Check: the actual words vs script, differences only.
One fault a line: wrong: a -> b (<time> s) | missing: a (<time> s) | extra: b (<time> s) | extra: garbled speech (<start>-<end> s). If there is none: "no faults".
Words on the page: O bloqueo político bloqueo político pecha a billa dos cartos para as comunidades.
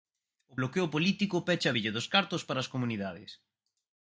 missing: bloqueo político (1.4 s)